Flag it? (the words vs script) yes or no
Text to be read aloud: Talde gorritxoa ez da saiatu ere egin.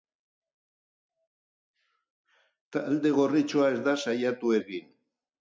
yes